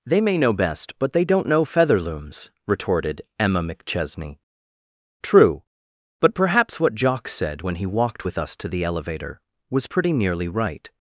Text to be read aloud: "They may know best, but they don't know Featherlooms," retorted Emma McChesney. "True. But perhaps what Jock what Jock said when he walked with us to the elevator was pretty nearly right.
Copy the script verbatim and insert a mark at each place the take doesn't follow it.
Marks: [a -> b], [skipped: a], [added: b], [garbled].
"They may know best, but they don't know Featherlooms," retorted Emma McChesney. "True. But perhaps what Jock [skipped: what Jock] said when he walked with us to the elevator was pretty nearly right.